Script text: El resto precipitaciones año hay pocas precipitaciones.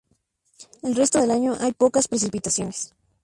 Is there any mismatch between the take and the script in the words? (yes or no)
yes